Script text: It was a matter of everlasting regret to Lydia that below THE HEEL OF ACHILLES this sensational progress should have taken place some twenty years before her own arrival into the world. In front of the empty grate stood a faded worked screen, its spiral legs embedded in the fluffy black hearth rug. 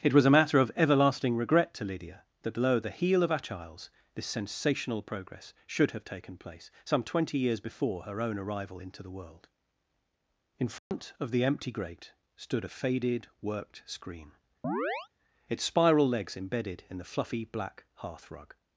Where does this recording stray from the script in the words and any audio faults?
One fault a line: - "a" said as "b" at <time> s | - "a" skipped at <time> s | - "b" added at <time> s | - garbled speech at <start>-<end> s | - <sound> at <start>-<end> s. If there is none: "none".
- dropout at 10.8-10.9 s
- chirp at 14.6-15.1 s